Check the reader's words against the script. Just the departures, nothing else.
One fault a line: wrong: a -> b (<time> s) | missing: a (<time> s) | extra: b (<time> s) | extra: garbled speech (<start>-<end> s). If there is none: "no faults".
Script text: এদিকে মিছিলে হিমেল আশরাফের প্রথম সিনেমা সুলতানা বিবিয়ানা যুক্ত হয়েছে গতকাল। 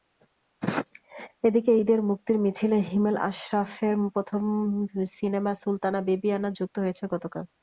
extra: ঈদের মুক্তির (1.8 s)